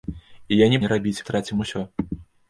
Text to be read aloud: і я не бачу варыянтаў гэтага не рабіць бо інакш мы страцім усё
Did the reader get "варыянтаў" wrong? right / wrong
wrong